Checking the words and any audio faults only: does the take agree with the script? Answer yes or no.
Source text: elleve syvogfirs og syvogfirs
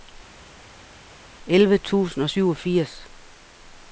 no